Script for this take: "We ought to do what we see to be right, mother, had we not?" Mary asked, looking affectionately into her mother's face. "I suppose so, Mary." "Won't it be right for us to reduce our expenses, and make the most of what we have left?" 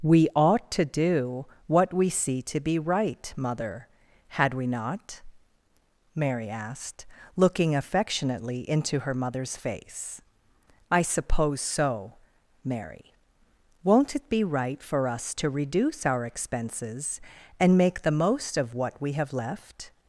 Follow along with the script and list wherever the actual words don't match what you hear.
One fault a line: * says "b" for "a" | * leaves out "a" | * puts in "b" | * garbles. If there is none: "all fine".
all fine